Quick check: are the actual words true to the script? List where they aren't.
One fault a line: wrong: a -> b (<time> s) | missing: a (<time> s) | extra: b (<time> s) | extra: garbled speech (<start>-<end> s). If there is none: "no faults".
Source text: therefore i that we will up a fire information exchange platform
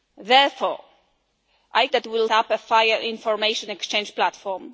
no faults